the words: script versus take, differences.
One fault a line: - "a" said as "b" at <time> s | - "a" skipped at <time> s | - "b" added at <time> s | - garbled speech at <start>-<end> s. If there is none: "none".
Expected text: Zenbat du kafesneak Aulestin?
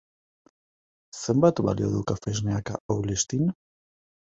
- "balio" added at 1.7 s